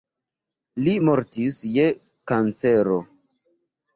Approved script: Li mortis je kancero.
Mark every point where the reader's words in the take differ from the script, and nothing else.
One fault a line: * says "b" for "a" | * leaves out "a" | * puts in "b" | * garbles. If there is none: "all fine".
all fine